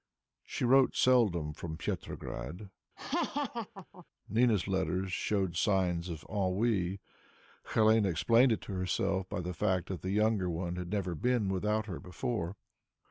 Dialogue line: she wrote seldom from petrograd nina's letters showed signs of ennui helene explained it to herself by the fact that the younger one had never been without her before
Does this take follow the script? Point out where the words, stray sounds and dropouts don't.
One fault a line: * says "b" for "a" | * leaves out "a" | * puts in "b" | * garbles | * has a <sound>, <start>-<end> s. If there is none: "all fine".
* has a laugh, 3.0-4.1 s